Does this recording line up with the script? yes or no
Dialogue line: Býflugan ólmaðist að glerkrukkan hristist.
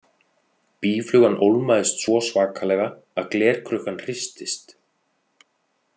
no